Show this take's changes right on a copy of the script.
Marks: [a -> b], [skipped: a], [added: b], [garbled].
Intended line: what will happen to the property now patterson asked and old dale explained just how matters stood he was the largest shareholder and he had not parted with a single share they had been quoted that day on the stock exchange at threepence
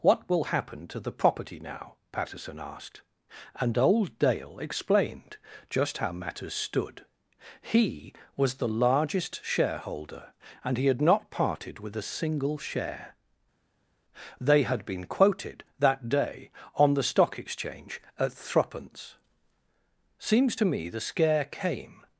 what will happen to the property now patterson asked and old dale explained just how matters stood he was the largest shareholder and he had not parted with a single share they had been quoted that day on the stock exchange at threepence [added: seems to me the scare came]